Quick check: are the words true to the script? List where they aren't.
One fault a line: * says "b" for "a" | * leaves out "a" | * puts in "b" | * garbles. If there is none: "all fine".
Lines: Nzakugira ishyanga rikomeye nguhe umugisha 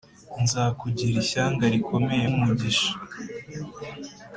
* leaves out "nguhe"